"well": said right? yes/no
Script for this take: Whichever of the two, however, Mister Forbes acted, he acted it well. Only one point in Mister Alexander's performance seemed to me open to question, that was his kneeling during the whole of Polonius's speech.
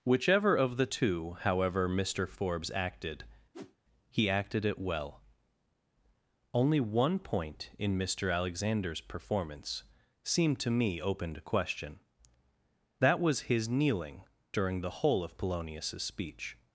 yes